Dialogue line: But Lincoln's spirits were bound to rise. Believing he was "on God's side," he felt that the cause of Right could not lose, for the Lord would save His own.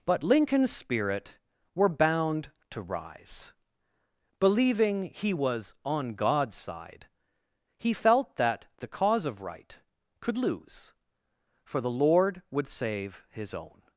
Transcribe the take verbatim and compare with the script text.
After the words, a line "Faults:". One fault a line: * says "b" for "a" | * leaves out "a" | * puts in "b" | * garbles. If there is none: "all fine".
But Lincoln's spirit were bound to rise. Believing he was "on God's side," he felt that the cause of Right could lose, for the Lord would save His own.
Faults:
* says "spirit" for "spirits"
* leaves out "not"